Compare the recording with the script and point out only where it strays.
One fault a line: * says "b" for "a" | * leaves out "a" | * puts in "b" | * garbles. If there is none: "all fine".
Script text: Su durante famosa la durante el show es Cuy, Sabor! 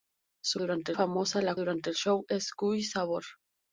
all fine